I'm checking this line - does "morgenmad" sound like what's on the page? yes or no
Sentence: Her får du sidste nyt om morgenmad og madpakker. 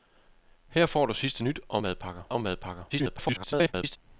no